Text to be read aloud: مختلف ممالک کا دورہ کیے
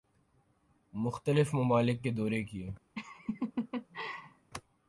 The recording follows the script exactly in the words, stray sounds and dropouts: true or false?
false